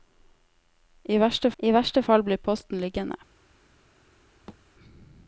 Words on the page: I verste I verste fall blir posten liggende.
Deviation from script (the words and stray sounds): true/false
true